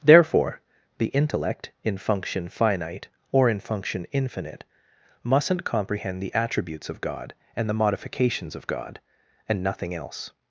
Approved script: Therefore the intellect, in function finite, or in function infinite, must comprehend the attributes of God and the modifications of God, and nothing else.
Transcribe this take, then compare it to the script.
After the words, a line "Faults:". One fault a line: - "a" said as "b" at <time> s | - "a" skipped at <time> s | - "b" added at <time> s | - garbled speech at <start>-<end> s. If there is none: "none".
Therefore the intellect, in function finite, or in function infinite, mustn't comprehend the attributes of God and the modifications of God, and nothing else.
Faults:
- "must" said as "mustn't" at 5.2 s